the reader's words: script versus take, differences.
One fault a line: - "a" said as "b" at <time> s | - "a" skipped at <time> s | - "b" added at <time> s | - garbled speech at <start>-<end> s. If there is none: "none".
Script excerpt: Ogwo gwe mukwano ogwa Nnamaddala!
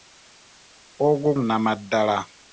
- "gwe mukwano ogwa" skipped at 1.3 s